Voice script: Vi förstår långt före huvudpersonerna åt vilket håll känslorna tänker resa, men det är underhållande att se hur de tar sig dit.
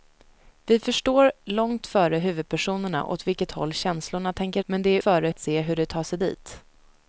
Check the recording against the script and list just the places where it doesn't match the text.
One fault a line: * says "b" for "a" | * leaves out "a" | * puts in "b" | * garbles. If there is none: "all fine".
* leaves out "resa"
* says "före" for "underhållande"